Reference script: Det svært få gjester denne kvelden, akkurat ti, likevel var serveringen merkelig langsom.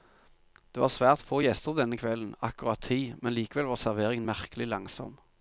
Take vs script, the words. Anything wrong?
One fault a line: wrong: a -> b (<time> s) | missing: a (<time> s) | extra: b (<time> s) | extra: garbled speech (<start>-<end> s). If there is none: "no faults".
extra: var (0.8 s)
extra: men (3.2 s)